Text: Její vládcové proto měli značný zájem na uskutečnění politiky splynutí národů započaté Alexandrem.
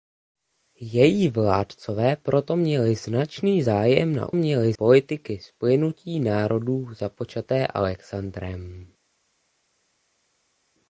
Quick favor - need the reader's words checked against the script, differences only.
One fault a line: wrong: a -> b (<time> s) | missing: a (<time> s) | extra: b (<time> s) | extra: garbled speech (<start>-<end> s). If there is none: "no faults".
wrong: uskutečnění -> měli (4.3 s)